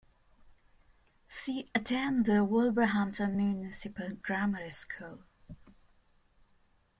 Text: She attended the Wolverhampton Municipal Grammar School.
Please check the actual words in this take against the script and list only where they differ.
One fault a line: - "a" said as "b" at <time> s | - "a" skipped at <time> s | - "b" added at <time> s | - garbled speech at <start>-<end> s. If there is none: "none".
none